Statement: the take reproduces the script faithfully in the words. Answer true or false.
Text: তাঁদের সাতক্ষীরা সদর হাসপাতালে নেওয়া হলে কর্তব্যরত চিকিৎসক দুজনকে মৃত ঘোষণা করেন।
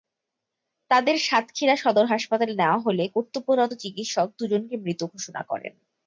true